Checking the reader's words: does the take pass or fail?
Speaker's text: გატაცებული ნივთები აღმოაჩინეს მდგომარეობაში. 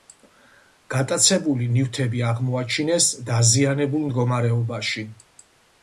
fail